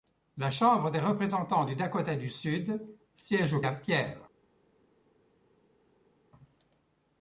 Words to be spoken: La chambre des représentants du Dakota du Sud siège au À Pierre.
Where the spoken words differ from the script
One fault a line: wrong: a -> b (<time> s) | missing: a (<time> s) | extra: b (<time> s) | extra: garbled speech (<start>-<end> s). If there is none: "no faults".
no faults